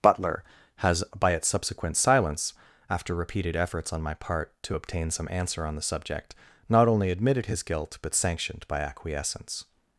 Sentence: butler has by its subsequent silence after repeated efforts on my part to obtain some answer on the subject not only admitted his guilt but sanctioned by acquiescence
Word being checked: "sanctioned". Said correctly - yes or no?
yes